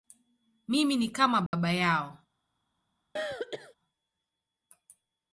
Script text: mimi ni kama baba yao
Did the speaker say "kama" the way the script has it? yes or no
yes